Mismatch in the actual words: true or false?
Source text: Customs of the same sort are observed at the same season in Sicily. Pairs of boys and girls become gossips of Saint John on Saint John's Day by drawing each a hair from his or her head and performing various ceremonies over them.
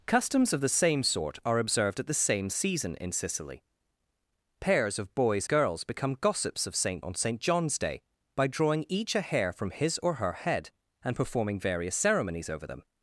true